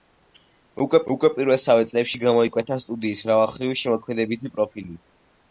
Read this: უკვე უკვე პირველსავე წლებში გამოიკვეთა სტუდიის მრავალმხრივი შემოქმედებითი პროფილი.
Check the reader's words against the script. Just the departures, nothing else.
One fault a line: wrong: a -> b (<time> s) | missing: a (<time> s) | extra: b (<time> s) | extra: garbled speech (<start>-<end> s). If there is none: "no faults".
no faults